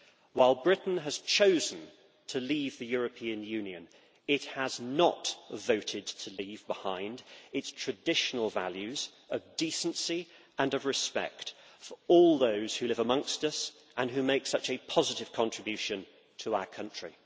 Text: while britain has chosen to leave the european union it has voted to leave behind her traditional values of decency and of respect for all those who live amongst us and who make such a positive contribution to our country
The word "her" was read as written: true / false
false